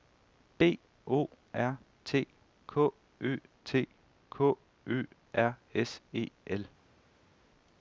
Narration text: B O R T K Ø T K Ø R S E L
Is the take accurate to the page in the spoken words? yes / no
yes